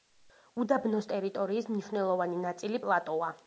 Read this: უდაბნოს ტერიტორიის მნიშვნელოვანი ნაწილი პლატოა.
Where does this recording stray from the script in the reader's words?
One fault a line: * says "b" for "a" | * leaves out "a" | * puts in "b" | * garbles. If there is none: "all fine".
all fine